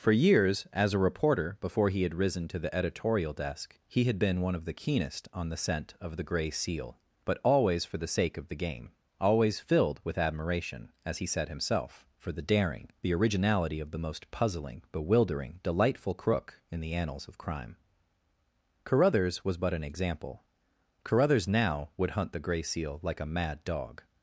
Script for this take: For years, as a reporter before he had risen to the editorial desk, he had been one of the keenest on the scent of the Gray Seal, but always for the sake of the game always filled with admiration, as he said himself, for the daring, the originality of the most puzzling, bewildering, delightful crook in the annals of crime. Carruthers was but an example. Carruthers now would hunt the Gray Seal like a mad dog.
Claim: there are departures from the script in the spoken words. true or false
false